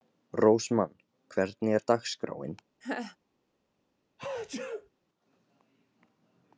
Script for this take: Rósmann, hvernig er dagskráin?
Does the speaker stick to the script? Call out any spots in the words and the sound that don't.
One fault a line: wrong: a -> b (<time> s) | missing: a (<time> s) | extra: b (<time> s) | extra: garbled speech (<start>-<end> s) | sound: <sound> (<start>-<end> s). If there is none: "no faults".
sound: laugh (2.8-3.2 s)
sound: sneeze (4.2-4.9 s)